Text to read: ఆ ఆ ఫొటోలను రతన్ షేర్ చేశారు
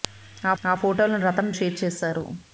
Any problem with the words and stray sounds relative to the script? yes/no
no